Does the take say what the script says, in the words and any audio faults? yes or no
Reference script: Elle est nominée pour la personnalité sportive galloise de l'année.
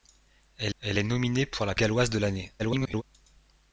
no